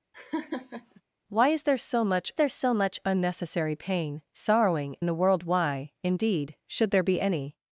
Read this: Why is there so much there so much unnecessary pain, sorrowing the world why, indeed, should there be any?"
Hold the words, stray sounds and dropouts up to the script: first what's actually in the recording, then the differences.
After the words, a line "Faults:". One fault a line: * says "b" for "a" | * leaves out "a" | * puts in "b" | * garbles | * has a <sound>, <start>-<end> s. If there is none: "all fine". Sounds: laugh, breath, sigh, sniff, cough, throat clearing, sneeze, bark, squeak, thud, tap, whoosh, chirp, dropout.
Why is there so much there so much unnecessary pain, sorrowing the world why, indeed, should there be any?"
Faults:
* has a laugh, 0.1-1.0 s